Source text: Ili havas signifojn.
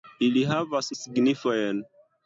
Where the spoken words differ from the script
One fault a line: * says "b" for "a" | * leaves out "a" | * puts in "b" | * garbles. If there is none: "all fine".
all fine